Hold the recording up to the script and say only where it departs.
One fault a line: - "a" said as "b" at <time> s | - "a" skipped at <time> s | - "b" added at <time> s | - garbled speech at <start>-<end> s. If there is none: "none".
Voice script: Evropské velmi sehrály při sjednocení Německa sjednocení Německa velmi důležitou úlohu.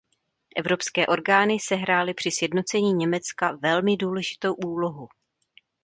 - "velmi" said as "orgány" at 1.0 s
- "sjednocení Německa" skipped at 3.6 s